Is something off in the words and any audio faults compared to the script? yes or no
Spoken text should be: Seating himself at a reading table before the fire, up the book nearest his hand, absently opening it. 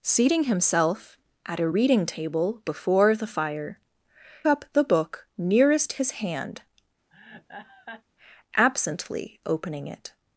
yes